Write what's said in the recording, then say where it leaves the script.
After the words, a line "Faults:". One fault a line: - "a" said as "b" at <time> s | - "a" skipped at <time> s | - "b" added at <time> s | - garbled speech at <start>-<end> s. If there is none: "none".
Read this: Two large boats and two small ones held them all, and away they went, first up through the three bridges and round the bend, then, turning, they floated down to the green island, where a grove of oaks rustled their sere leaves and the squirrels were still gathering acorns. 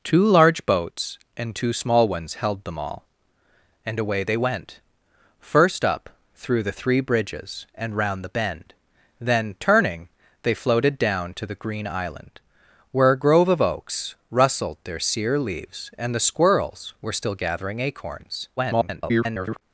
Two large boats and two small ones held them all, and away they went, first up through the three bridges and round the bend, then, turning, they floated down to the green island, where a grove of oaks rustled their sere leaves and the squirrels were still gathering acorns. [garbled]
Faults:
- garbled speech at 18.6-19.6 s